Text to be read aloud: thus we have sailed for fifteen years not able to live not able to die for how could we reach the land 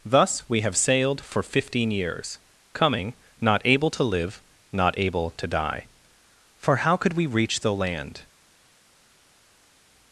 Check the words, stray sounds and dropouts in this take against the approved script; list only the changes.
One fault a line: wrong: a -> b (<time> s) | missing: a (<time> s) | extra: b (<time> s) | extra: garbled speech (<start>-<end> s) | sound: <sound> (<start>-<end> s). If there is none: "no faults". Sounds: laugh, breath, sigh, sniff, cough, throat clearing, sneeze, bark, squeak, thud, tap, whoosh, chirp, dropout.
extra: coming (2.7 s)